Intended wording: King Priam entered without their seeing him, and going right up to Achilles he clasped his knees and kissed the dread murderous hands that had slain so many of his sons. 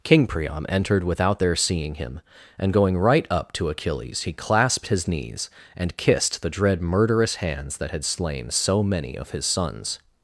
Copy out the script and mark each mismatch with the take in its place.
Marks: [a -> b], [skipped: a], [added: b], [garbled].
King Priam entered without their seeing him, and going right up to Achilles he clasped his knees and kissed the dread murderous hands that had slain so many of his sons.